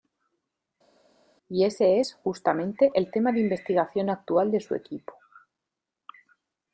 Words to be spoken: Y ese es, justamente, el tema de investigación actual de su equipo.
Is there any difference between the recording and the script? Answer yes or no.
no